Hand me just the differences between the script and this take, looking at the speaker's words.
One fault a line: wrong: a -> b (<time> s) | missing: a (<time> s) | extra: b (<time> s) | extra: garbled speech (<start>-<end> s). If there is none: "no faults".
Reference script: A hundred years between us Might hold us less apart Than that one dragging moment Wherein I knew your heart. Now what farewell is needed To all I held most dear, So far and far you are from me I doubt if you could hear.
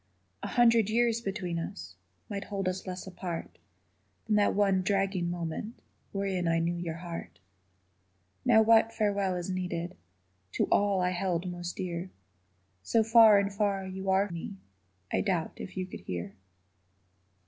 missing: from (14.3 s)